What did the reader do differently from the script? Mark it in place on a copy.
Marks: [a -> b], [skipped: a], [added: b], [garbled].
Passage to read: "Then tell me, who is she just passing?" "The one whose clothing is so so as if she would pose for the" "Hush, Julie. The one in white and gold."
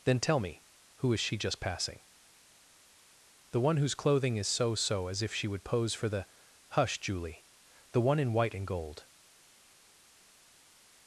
"Then tell me, who is she just passing?" "The one whose clothing is so so as if she would pose for the" "Hush, Julie. The one in white and gold."